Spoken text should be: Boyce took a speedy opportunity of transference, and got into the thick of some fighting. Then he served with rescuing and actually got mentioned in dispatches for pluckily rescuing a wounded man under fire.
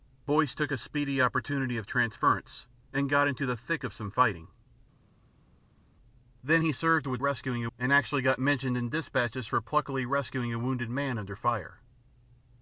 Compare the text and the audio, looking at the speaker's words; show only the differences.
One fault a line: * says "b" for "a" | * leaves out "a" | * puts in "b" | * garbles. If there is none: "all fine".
all fine